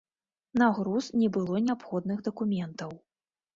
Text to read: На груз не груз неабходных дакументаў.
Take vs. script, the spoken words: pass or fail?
fail